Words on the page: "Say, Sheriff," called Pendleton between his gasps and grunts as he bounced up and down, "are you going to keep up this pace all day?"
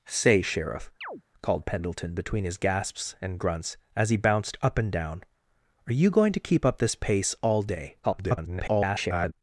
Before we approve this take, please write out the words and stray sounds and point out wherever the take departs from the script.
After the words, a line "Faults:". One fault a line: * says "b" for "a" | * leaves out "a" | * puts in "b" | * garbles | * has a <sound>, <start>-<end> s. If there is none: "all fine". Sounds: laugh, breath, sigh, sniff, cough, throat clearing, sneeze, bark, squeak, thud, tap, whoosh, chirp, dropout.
"Say, Sheriff," called Pendleton between his gasps and grunts as he bounced up and down, "are you going to keep up this pace all day?" [garbled]
Faults:
* has a chirp, 1.0-1.2 s
* garbles